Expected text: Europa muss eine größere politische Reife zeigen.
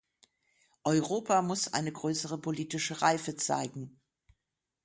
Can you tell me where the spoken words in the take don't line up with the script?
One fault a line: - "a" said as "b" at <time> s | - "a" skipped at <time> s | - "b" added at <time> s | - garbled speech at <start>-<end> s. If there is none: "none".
none